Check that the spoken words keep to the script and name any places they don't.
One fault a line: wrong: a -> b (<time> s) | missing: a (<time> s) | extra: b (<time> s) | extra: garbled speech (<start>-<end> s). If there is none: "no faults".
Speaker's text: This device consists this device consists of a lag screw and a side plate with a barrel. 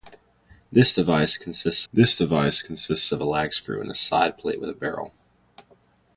no faults